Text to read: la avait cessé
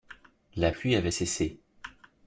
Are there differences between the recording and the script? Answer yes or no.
yes